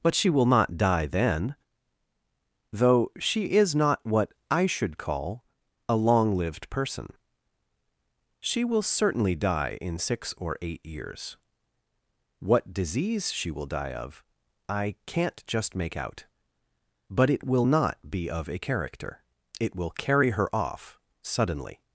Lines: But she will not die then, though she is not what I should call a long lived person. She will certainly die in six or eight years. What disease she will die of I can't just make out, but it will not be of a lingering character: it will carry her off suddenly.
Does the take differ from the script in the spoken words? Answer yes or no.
yes